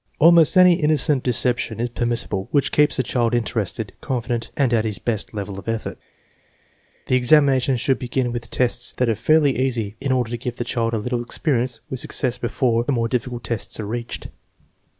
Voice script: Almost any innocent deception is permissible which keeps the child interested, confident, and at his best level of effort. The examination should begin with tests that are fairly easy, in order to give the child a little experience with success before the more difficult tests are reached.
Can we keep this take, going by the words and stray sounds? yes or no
yes